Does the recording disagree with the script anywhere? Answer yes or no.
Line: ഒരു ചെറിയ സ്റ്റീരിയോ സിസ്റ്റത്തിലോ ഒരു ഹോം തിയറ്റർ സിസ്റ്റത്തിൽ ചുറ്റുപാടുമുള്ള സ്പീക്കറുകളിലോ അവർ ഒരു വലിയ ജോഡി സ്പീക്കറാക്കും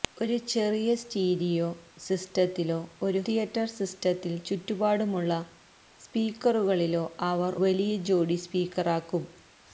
yes